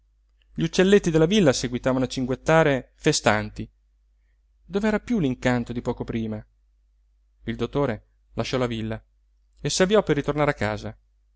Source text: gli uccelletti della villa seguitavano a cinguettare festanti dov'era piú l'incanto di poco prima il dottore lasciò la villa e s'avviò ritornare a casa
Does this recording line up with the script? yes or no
no